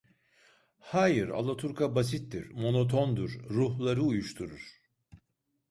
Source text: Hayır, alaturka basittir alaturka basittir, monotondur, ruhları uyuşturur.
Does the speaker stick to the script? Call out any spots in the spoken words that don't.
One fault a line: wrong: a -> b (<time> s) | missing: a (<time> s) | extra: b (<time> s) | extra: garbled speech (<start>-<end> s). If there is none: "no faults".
missing: alaturka basittir (2.5 s)